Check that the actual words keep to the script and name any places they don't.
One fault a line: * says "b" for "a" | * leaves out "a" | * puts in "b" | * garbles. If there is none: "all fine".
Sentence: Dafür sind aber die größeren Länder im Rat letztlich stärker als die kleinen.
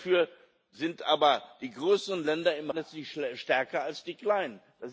* leaves out "Rat"